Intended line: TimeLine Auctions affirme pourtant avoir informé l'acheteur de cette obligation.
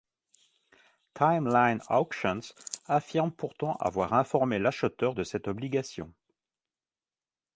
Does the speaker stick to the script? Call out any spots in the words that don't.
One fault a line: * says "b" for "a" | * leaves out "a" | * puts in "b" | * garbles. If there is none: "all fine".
all fine